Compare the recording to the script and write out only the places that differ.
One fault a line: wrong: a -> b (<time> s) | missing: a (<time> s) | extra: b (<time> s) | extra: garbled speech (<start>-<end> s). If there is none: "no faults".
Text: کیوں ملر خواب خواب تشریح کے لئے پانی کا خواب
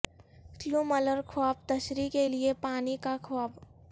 missing: خواب (1.6 s)